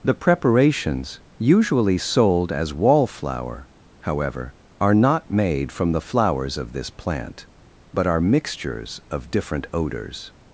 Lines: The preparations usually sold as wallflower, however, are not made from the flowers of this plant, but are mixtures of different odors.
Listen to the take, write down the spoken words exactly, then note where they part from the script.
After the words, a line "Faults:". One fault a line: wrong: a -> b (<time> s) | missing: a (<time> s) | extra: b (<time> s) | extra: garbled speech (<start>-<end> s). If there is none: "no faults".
The preparations usually sold as wallflower, however, are not made from the flowers of this plant, but are mixtures of different odors.
Faults:
no faults